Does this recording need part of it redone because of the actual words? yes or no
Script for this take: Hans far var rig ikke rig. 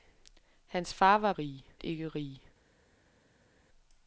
no